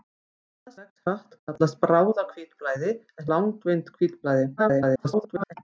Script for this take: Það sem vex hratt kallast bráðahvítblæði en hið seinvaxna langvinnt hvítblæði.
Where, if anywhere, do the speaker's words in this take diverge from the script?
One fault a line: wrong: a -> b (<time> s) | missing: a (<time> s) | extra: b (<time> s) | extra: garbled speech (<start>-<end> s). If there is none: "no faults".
missing: sem (0.7 s)
missing: hið seinvaxna (3.3 s)
extra: garbled speech (4.6-5.5 s)